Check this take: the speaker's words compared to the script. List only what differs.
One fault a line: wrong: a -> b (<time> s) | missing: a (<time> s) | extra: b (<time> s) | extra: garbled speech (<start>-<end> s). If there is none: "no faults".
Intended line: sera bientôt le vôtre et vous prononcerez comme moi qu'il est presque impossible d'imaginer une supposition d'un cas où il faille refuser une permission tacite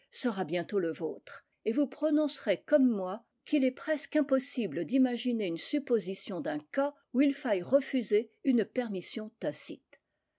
no faults